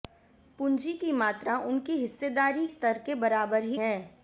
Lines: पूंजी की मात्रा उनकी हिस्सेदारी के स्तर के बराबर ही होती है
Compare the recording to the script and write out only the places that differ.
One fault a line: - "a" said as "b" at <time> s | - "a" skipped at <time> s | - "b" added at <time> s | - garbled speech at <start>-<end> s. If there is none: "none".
- "के" skipped at 2.7 s
- "होती" skipped at 3.8 s